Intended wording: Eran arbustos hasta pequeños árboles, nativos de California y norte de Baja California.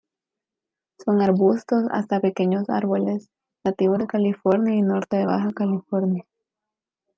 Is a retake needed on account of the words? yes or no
yes